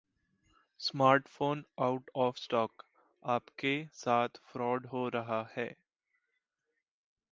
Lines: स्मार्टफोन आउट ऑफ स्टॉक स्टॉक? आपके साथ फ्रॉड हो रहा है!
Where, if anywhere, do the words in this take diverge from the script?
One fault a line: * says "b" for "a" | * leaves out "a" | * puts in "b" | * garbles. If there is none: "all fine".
* leaves out "स्टॉक"